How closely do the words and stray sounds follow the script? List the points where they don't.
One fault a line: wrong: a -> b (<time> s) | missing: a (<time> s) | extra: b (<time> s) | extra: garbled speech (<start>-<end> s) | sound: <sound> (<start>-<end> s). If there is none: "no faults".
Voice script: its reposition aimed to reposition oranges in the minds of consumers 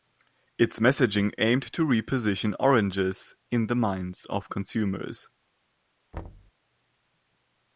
wrong: reposition -> messaging (0.8 s)
sound: thud (6.1-6.5 s)